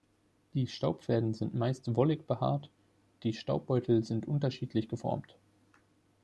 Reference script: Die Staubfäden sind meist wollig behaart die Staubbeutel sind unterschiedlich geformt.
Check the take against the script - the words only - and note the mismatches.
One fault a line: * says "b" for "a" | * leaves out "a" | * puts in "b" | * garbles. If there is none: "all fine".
all fine